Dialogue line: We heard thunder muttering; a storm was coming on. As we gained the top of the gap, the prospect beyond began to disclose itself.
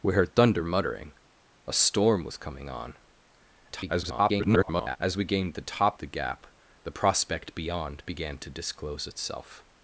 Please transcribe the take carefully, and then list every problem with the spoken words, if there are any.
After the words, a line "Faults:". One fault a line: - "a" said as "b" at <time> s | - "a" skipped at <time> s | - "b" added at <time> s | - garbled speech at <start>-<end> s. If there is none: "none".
We heard thunder muttering; a storm was coming on. [garbled] As we gained the top the gap, the prospect beyond began to disclose itself.
Faults:
- garbled speech at 3.7-5.0 s
- "of" skipped at 6.0 s